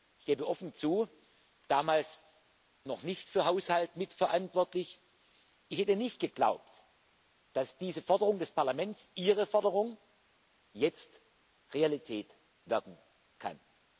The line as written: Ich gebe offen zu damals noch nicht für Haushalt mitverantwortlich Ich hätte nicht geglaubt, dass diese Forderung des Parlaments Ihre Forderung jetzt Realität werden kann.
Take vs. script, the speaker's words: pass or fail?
pass